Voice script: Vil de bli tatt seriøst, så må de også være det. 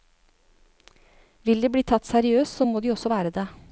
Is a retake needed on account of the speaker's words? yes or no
no